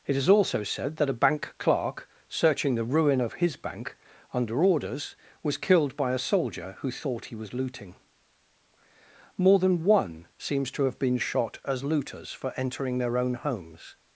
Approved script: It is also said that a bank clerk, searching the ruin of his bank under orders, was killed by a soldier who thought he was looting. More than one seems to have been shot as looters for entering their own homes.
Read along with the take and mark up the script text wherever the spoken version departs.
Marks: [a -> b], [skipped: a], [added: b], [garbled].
It is also said that a bank clerk, searching the ruin of his bank under orders, was killed by a soldier who thought he was looting. More than one seems to have been shot as looters for entering their own homes.